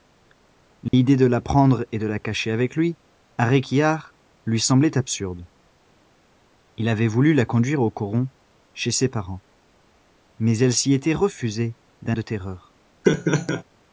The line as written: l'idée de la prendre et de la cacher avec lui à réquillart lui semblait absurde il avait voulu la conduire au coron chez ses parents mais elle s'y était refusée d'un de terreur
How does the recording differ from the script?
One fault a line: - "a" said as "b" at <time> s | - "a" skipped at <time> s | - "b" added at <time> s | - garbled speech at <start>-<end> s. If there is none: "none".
none